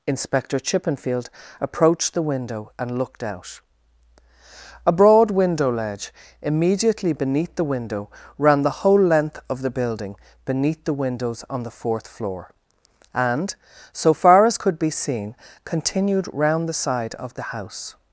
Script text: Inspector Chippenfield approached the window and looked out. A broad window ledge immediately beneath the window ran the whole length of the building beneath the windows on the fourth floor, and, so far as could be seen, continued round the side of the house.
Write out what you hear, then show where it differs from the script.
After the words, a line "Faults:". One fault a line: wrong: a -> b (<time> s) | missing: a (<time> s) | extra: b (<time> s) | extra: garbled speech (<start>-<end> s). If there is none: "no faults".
Inspector Chippenfield approached the window and looked out. A broad window ledge immediately beneath the window ran the whole length of the building beneath the windows on the fourth floor, and, so far as could be seen, continued round the side of the house.
Faults:
no faults